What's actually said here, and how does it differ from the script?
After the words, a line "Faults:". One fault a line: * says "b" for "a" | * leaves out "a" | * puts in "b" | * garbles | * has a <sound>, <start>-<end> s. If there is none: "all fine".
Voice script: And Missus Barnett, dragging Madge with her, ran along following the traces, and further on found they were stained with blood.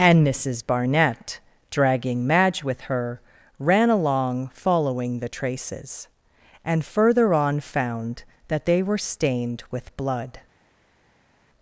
And Missus Barnett, dragging Madge with her, ran along following the traces, and further on found that they were stained with blood.
Faults:
* puts in "that"